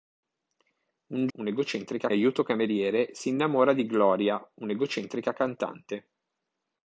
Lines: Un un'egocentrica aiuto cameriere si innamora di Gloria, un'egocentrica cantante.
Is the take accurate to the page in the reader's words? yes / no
yes